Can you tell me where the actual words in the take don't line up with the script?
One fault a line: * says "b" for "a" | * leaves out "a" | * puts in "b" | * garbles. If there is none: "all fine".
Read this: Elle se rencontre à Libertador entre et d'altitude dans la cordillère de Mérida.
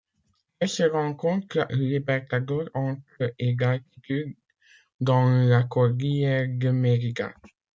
* leaves out "à"